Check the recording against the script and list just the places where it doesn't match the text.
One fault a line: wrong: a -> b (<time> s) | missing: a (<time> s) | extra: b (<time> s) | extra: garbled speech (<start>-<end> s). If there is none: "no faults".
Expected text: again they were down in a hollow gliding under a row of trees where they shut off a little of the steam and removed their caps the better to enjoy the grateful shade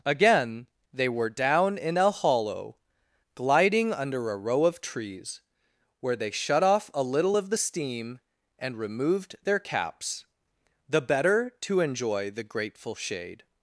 no faults